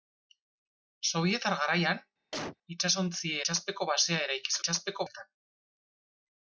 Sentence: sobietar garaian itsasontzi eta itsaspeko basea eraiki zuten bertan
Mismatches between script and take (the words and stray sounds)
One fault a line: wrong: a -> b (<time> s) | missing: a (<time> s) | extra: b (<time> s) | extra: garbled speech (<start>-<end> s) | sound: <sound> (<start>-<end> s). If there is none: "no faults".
sound: cough (2.3-2.6 s)
missing: eta (3.3 s)
wrong: zuten -> itsaspeko (4.6 s)